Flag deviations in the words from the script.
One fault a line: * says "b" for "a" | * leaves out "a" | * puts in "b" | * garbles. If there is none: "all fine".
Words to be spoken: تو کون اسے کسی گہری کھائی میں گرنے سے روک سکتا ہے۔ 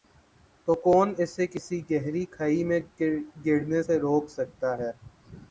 all fine